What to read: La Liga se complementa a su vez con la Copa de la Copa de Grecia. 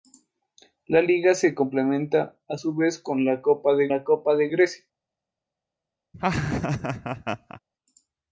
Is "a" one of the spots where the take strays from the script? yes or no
no